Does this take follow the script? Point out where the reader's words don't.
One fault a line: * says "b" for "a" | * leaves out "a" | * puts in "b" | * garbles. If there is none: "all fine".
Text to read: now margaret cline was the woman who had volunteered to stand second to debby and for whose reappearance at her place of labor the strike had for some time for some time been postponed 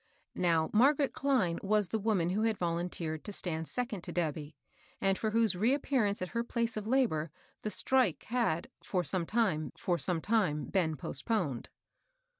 all fine